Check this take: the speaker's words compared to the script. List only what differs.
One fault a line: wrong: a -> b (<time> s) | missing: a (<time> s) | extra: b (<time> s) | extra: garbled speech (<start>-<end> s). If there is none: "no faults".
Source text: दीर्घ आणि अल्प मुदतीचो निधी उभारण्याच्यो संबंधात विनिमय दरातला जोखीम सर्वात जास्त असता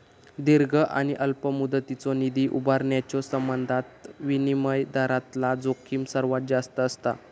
no faults